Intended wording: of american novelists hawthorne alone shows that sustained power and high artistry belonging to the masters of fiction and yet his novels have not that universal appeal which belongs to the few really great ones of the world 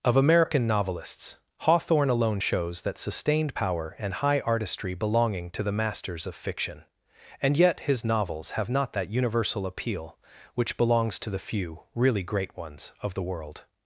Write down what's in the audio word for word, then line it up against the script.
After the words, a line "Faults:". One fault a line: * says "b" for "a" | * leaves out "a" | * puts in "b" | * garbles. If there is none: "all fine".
of american novelists hawthorne alone shows that sustained power and high artistry belonging to the masters of fiction and yet his novels have not that universal appeal which belongs to the few really great ones of the world
Faults:
all fine